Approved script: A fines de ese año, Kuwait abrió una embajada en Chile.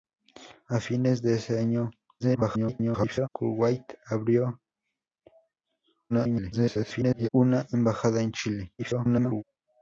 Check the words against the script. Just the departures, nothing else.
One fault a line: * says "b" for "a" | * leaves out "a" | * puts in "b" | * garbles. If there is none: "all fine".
* garbles
* garbles
* garbles